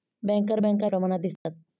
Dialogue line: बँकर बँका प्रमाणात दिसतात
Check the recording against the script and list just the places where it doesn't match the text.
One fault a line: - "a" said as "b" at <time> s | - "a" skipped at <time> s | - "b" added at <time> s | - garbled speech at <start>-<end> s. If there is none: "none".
none